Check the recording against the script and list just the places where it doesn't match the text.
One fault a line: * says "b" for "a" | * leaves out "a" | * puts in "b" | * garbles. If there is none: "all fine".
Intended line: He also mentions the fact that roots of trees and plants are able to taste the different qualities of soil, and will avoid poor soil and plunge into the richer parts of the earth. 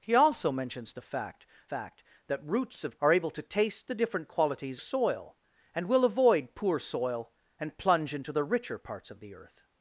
* puts in "fact"
* leaves out "trees and plants"
* leaves out "of"